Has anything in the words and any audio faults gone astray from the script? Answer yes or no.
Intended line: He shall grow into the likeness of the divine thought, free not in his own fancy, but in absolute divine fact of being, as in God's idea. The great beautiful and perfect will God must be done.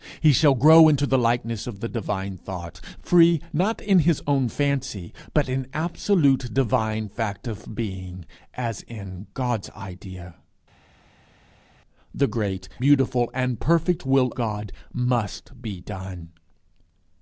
no